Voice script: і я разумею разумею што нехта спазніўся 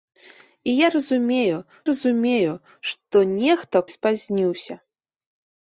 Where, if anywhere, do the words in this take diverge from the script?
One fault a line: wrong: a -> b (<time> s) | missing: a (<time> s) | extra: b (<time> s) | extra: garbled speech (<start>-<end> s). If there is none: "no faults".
no faults